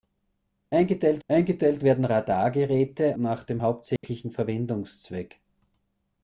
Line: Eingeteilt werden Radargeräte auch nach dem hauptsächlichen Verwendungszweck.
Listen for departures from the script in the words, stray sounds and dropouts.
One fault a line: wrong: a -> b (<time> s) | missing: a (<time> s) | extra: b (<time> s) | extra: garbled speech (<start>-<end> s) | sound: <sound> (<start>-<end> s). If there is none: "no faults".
extra: eingeteilt (1.3 s)
missing: auch (3.2 s)
sound: dropout (4.0-4.0 s)